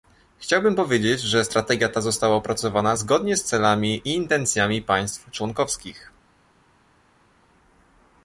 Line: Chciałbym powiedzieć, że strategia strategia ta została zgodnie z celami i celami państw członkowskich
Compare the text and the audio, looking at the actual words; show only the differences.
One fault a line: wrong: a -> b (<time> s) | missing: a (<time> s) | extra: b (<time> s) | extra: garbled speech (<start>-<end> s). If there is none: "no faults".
missing: strategia (1.9 s)
extra: opracowana (2.4 s)
wrong: celami -> intencjami (4.2 s)